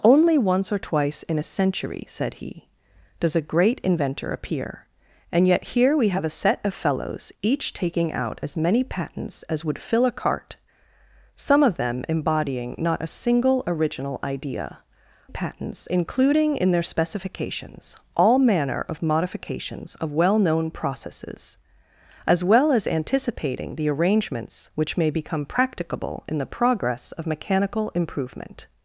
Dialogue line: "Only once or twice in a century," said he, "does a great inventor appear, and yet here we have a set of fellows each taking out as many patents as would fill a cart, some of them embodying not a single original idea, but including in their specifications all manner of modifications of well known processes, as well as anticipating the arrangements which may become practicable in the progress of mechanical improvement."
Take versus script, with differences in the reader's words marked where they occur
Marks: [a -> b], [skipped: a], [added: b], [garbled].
"Only once or twice in a century," said he, "does a great inventor appear, and yet here we have a set of fellows each taking out as many patents as would fill a cart, some of them embodying not a single original idea, [but -> patents] including in their specifications all manner of modifications of well known processes, as well as anticipating the arrangements which may become practicable in the progress of mechanical improvement."